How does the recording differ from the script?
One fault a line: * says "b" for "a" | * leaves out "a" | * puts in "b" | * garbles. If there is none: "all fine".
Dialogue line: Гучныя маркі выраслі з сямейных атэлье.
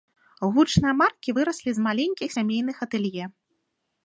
* puts in "маленькіх"